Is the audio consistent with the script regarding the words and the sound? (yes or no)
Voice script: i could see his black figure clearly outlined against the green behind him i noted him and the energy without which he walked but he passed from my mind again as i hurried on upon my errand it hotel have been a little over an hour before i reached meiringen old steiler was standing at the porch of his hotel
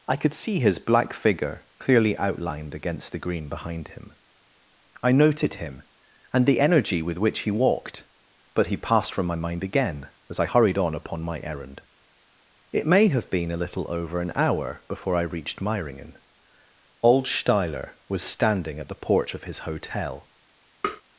no